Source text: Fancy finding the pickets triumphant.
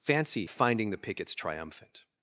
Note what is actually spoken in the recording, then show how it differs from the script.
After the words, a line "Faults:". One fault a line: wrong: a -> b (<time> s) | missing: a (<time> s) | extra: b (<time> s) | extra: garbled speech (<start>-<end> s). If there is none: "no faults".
Fancy finding the pickets triumphant.
Faults:
no faults